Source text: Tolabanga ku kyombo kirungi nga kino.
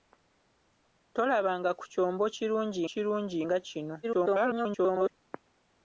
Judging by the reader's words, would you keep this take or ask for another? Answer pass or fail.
fail